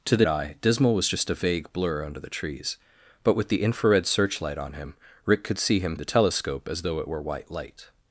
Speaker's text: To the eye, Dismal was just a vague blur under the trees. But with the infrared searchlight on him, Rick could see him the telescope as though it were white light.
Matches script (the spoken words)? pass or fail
pass